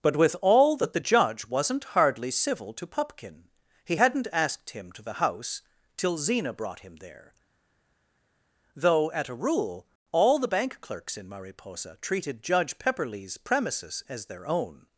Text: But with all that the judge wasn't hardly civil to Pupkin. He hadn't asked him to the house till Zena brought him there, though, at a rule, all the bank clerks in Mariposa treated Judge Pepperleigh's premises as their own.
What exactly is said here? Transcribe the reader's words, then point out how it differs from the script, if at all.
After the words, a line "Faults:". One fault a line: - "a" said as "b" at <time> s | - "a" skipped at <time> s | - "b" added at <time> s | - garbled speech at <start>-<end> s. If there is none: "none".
But with all that the judge wasn't hardly civil to Pupkin. He hadn't asked him to the house till Zena brought him there, though, at a rule, all the bank clerks in Mariposa treated Judge Pepperleigh's premises as their own.
Faults:
none